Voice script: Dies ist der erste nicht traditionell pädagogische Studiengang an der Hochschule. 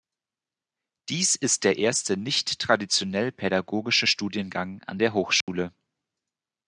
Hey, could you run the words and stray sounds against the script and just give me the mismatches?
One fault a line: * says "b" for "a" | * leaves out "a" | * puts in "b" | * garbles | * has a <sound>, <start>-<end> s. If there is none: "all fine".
* has a dropout, 5.4-5.5 s